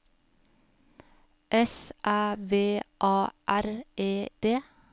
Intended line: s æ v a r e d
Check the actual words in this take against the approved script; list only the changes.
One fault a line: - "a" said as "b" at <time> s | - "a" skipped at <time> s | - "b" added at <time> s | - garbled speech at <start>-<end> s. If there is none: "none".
none